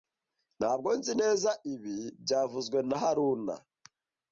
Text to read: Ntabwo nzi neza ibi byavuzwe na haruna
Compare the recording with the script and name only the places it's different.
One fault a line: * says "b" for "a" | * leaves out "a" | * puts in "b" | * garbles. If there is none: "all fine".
all fine